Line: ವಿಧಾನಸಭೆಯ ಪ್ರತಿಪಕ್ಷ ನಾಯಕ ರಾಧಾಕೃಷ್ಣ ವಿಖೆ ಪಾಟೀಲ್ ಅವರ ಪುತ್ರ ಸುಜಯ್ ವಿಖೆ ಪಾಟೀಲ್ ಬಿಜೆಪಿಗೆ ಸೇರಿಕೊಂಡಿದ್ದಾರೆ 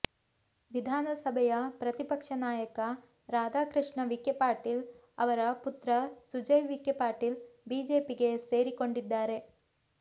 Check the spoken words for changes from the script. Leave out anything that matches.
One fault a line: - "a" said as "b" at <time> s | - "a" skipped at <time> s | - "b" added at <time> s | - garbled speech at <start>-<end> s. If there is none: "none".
none